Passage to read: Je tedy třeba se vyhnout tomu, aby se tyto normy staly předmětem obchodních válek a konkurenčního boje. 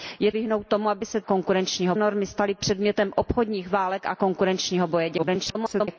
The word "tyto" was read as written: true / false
false